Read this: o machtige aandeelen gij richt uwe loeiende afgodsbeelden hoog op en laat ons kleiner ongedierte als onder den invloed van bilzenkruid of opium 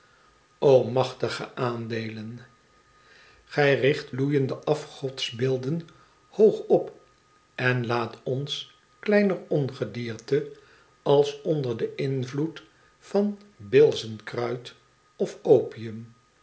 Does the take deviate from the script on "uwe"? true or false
true